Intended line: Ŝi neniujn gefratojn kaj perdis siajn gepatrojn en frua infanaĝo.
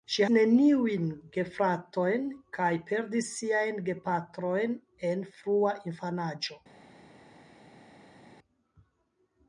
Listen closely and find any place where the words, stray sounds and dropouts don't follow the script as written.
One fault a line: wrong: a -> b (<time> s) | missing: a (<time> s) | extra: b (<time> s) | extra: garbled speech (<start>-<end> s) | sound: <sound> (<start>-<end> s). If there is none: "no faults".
no faults